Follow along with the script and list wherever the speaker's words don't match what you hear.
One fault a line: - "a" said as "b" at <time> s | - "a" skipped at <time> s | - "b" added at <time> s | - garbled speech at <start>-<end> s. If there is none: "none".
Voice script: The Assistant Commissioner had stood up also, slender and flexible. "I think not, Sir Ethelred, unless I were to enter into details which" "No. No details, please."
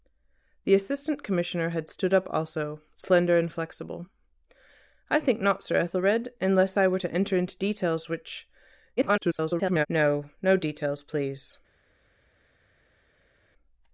- garbled speech at 9.0-9.9 s